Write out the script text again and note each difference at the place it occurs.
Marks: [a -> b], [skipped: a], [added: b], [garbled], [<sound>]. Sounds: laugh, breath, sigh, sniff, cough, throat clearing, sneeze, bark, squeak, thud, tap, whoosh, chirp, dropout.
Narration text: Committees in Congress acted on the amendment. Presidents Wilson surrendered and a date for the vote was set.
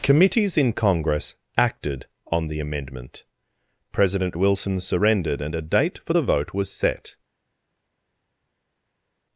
Committees in Congress acted on the amendment. [Presidents -> President] Wilson surrendered and a date for the vote was set.